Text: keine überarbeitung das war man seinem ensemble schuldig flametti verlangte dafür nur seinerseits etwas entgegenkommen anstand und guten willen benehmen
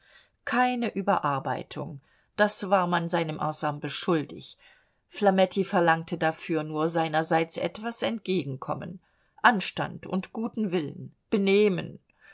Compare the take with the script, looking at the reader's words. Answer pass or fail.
pass